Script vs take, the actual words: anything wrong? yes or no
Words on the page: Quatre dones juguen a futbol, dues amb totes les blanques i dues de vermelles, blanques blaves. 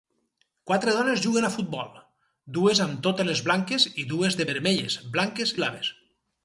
no